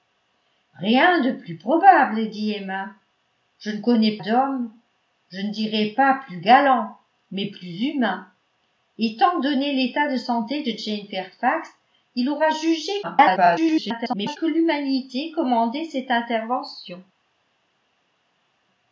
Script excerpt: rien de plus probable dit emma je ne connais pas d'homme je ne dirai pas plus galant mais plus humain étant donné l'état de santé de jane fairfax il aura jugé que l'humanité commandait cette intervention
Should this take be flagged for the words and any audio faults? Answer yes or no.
yes